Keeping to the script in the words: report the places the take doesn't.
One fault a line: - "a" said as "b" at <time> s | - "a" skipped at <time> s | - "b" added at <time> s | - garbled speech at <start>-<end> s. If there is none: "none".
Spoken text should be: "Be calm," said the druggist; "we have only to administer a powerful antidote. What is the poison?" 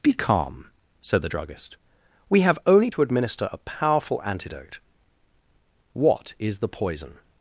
none